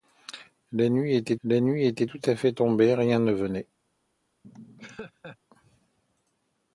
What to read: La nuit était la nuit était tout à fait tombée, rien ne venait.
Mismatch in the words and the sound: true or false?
true